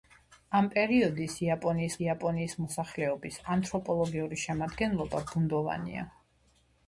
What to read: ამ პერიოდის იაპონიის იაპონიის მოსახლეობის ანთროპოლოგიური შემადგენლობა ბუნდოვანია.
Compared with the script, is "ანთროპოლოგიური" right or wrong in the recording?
right